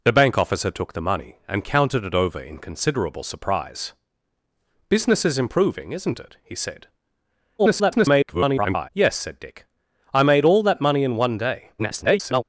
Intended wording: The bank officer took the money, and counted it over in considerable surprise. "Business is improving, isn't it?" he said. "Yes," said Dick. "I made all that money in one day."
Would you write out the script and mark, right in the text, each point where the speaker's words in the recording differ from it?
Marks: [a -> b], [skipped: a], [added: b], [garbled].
The bank officer took the money, and counted it over in considerable surprise. "Business is improving, isn't it?" he said. [garbled] "Yes," said Dick. "I made all that money in one day." [garbled]